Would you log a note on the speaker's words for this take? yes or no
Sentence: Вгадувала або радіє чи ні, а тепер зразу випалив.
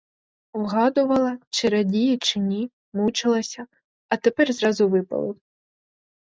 yes